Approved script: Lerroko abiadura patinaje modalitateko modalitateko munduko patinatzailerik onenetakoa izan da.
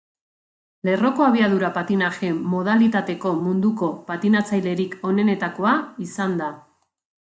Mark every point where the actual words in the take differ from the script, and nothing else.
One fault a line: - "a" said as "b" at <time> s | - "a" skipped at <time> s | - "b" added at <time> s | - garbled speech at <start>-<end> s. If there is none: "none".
- "modalitateko" skipped at 3.4 s